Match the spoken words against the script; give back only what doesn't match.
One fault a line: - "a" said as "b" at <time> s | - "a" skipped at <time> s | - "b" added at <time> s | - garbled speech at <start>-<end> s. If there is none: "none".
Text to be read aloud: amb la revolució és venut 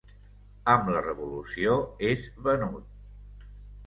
none